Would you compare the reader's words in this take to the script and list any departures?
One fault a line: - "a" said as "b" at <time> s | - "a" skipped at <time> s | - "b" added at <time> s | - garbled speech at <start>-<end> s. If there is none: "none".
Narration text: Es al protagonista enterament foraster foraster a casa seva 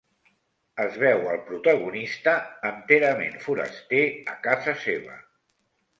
- "veu" added at 1.0 s
- "foraster" skipped at 4.0 s